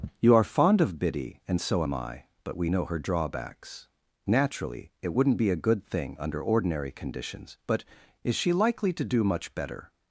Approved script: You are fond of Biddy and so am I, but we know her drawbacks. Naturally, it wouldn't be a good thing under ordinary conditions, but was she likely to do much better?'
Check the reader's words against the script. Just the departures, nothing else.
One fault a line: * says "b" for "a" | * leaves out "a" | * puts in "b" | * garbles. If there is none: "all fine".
* says "is" for "was"